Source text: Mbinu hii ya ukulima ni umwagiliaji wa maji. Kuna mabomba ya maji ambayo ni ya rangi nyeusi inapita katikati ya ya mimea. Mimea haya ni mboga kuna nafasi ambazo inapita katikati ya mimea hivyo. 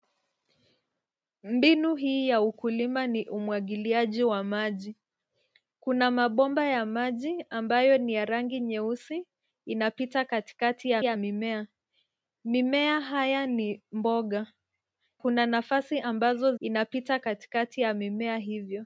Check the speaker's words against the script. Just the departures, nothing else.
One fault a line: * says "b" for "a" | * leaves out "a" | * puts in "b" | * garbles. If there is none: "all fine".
all fine